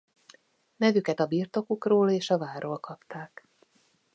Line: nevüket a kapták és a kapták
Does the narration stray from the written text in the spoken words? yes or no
yes